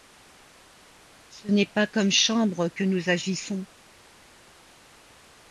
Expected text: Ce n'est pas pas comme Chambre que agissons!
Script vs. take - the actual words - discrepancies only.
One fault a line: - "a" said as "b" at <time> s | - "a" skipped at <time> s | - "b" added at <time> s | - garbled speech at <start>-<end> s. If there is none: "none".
- "pas" skipped at 1.9 s
- "nous" added at 2.8 s